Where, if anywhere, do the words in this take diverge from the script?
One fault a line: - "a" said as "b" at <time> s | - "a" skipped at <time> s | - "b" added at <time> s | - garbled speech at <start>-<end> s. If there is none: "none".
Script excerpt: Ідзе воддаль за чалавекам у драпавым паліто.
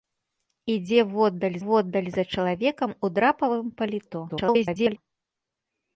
- "воддаль" added at 1.6 s
- garbled speech at 4.3-5.0 s